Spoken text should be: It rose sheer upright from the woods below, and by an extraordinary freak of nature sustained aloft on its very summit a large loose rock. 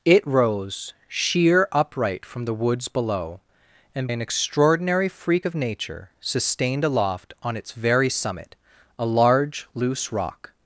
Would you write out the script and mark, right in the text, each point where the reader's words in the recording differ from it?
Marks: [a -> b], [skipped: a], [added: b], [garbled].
It rose sheer upright from the woods below, and [skipped: by] an extraordinary freak of nature sustained aloft on its very summit a large loose rock.